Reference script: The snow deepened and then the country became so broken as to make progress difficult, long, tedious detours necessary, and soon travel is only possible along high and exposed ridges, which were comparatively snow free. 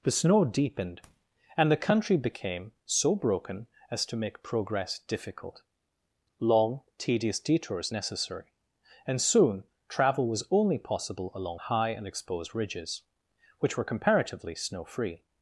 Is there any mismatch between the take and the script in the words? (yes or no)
yes